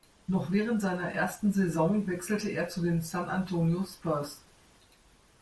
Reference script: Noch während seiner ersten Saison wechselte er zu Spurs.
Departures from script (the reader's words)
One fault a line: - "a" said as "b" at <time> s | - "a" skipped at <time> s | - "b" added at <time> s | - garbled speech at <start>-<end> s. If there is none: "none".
- "den San Antonio" added at 2.8 s